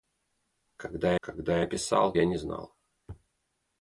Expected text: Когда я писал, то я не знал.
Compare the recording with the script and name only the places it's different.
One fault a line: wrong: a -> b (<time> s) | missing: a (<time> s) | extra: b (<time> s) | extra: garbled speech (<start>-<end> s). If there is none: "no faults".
extra: когда (1.2 s)
missing: то (2.1 s)